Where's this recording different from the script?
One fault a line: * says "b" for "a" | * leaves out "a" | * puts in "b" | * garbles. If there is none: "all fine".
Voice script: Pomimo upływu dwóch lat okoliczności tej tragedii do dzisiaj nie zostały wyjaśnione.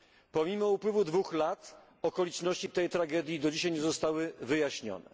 all fine